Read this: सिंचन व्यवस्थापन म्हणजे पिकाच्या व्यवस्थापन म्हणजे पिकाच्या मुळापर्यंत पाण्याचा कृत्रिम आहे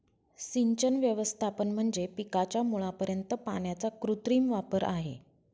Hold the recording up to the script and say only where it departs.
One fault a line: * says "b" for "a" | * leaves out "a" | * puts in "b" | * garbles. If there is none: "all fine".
* leaves out "व्यवस्थापन म्हणजे पिकाच्या"
* puts in "वापर"